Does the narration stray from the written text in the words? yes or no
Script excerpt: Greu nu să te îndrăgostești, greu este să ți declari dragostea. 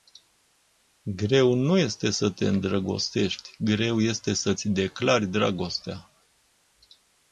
yes